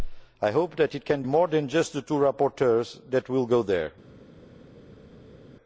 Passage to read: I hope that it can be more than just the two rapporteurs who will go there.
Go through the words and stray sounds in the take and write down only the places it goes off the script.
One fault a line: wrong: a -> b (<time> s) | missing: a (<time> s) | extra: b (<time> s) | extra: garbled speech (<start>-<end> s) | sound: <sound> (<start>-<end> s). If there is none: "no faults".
missing: be (1.2 s)